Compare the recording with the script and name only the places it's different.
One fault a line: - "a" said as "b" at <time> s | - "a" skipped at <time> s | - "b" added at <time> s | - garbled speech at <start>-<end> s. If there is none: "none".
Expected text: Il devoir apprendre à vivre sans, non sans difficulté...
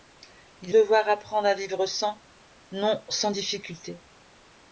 none